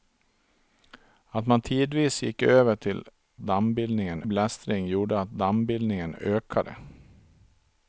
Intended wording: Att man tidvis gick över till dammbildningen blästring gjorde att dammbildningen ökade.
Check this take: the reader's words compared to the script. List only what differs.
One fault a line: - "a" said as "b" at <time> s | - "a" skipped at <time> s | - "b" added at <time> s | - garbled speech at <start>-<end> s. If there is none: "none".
none